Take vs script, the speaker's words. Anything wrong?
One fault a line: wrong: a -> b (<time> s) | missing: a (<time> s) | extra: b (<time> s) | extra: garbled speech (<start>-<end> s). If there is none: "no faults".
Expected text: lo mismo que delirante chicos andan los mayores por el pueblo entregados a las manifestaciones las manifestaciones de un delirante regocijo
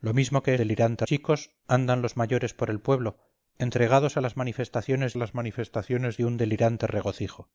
no faults